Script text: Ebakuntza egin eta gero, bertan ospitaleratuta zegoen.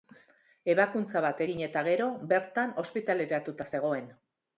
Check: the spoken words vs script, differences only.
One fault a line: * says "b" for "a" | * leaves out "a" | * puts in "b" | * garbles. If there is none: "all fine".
* puts in "bat"